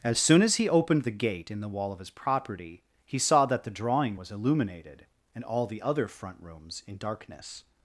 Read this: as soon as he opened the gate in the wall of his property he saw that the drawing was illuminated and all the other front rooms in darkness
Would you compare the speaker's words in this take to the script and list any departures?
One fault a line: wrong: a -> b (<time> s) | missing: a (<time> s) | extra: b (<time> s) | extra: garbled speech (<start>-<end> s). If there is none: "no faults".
no faults